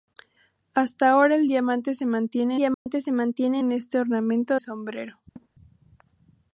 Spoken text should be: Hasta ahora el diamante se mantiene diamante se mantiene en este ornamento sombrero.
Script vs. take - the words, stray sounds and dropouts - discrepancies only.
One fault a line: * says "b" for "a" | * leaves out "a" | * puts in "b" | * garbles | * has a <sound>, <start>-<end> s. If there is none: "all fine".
* has a dropout, 2.7-2.9 s
* has a laugh, 5.4-5.5 s